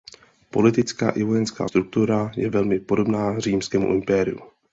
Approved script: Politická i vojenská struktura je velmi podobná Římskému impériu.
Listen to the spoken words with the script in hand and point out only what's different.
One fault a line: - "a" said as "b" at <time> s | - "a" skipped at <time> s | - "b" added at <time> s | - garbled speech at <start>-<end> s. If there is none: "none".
none